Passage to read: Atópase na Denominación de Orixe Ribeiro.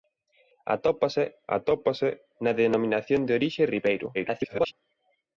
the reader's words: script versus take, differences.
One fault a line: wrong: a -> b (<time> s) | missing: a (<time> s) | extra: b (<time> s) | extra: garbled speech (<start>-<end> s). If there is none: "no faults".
extra: atópase (1.6 s)
extra: garbled speech (4.1-4.7 s)